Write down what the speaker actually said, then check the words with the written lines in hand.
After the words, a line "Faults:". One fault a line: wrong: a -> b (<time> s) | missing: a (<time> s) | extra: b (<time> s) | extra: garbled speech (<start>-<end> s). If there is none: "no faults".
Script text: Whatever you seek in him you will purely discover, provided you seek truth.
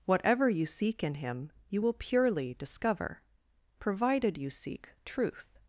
Whatever you seek in him you will purely discover, provided you seek truth.
Faults:
no faults